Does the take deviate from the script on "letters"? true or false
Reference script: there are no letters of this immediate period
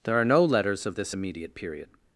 false